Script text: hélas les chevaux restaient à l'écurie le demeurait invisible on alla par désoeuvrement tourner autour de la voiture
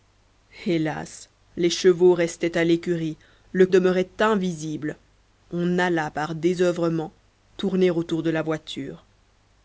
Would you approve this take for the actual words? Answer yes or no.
yes